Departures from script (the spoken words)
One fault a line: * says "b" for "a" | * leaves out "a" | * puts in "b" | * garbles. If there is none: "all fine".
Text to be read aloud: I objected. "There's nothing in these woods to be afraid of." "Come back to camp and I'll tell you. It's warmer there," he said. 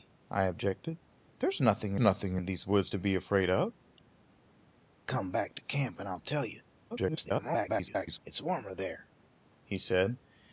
* puts in "nothing"
* garbles